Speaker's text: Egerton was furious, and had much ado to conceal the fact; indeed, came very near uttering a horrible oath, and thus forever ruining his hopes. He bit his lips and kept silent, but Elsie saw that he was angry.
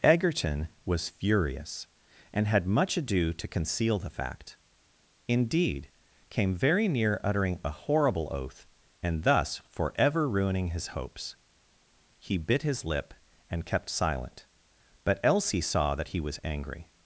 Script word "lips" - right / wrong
wrong